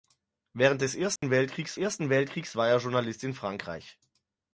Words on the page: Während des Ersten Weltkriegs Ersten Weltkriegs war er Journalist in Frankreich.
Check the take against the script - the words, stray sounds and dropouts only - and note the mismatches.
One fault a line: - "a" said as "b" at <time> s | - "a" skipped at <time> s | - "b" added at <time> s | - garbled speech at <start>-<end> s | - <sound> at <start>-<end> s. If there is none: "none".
- dropout at 1.2-1.2 s